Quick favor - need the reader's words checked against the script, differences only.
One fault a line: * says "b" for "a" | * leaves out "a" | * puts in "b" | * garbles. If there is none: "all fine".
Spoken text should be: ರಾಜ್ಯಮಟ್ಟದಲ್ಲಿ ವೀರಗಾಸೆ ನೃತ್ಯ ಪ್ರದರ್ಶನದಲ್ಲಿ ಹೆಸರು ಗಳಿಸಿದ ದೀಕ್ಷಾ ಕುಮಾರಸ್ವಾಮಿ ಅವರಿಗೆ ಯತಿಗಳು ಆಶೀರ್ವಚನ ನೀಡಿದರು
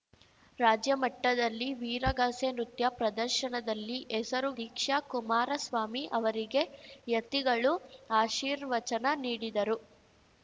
* leaves out "ಗಳಿಸಿದ"